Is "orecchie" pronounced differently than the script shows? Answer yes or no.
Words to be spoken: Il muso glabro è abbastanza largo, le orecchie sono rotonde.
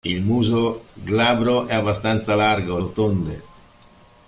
yes